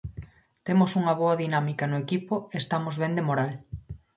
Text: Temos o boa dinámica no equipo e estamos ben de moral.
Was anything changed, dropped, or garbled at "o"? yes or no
yes